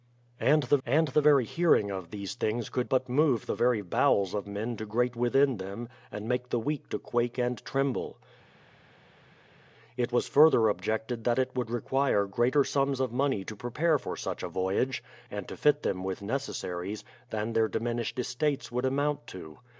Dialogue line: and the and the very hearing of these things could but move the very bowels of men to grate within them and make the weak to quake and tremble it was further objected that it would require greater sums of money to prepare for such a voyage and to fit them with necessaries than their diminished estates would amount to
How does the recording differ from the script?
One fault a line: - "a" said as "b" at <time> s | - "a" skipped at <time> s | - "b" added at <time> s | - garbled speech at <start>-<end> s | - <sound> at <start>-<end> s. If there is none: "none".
none